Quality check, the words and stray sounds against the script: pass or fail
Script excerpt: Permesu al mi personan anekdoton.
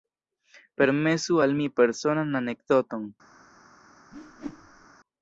fail